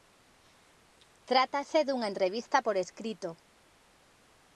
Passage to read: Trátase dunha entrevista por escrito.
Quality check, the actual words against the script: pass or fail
pass